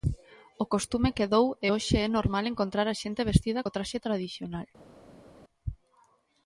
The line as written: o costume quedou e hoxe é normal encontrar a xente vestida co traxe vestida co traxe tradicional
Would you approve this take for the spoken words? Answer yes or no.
no